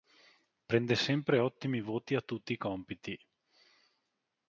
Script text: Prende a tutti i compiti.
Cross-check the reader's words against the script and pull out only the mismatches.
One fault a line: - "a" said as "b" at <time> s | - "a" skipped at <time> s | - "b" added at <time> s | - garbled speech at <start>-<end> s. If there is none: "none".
- "sempre ottimi voti" added at 0.9 s